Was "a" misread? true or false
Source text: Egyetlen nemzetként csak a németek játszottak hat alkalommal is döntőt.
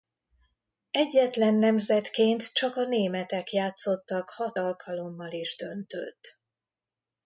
false